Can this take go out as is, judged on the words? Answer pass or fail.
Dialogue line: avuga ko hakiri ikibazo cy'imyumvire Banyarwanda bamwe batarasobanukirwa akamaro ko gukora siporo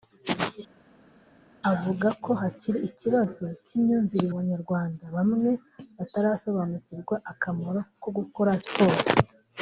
pass